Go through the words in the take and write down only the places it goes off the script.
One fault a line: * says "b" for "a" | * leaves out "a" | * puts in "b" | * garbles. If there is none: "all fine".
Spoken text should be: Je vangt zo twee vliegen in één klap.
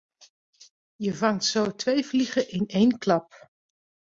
all fine